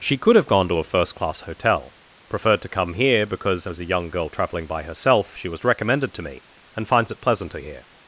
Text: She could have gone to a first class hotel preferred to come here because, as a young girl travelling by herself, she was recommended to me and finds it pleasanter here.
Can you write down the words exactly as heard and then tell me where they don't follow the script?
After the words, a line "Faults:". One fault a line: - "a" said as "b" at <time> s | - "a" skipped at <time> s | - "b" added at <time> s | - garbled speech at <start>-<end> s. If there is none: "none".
She could have gone to a first class hotel preferred to come here because, as a young girl travelling by herself, she was recommended to me and finds it pleasanter here.
Faults:
none